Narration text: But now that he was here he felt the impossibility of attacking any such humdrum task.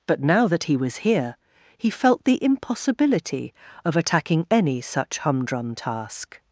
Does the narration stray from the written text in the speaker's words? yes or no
no